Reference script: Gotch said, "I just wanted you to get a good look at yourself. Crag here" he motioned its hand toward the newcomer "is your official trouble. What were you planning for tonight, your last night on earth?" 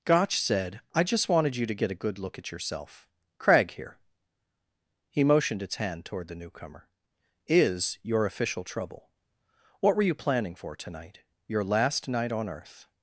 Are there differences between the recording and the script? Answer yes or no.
no